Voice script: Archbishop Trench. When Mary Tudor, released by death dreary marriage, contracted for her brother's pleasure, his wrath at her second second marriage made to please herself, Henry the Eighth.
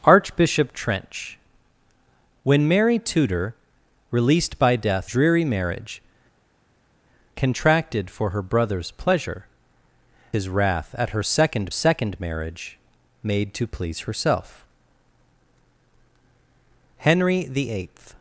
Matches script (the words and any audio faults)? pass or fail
pass